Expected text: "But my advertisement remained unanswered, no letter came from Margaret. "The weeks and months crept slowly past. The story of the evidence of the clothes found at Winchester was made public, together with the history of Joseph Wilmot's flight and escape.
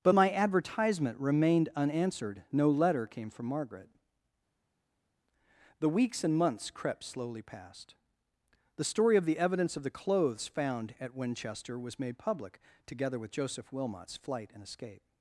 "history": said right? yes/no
no